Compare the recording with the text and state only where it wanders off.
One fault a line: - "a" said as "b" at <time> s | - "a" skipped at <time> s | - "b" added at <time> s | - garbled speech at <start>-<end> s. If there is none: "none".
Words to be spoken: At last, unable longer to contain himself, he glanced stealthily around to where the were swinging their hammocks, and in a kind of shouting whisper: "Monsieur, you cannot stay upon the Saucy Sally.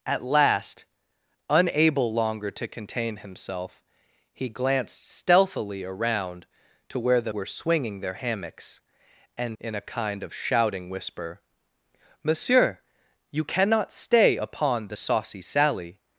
none